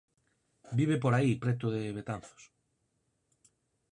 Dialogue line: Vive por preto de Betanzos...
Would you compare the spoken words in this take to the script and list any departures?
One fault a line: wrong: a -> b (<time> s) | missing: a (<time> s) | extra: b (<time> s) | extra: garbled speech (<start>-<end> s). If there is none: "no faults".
extra: aí (1.1 s)